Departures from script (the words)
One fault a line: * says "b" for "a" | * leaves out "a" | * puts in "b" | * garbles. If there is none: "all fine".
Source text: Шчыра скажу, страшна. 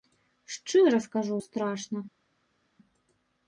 all fine